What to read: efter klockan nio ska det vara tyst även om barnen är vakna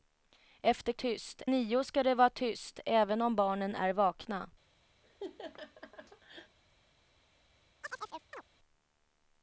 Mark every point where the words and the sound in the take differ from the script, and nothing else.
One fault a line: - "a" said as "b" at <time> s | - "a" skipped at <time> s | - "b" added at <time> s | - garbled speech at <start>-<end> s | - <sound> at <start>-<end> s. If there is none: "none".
- "klockan" said as "tyst" at 0.9 s
- laugh at 5.0-6.6 s
- chirp at 7.8-8.4 s